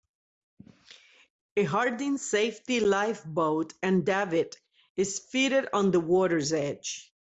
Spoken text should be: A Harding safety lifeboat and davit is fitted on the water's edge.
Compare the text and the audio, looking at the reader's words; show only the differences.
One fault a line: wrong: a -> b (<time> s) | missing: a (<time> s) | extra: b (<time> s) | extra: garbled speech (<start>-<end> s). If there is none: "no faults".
no faults